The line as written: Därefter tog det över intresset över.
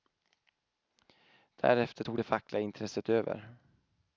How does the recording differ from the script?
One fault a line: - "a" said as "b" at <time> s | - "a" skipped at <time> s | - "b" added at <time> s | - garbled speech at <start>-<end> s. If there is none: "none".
- "över" said as "fackliga" at 2.2 s